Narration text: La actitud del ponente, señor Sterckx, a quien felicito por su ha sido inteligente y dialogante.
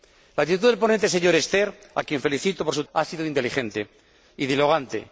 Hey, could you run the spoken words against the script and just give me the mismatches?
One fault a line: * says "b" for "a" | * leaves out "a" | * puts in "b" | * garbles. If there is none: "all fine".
all fine